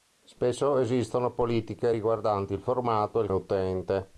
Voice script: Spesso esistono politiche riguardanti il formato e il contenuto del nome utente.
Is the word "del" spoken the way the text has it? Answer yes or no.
no